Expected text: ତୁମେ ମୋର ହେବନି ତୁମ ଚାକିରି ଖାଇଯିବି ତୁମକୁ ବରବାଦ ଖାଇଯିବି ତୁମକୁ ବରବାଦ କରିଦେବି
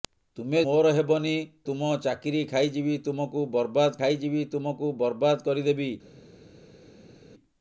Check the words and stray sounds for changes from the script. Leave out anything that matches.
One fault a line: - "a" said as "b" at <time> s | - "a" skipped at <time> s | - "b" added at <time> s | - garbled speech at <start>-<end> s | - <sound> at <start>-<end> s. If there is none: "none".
none